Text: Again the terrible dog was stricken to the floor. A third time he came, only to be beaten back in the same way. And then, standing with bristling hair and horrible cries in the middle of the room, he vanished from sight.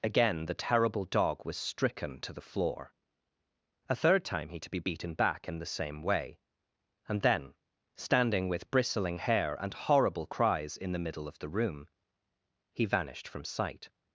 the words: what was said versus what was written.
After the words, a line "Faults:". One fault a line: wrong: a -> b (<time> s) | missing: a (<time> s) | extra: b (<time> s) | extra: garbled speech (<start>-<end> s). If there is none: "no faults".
Again the terrible dog was stricken to the floor. A third time he to be beaten back in the same way. And then, standing with bristling hair and horrible cries in the middle of the room, he vanished from sight.
Faults:
missing: came only (4.6 s)